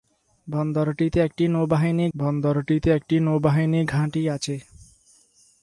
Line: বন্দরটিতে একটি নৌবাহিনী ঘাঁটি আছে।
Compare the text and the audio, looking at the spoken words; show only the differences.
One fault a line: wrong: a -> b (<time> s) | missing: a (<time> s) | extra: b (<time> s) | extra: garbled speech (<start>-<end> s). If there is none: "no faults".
extra: বন্দরটিতে একটি নৌবাহিনী (2.1 s)